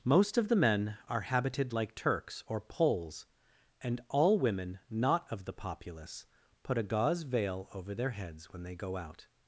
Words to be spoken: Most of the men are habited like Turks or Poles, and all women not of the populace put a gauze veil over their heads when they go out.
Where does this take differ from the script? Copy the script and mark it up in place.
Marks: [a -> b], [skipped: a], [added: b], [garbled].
Most of the men are habited like Turks or Poles, and all women not of the populace put a gauze veil over their heads when they go out.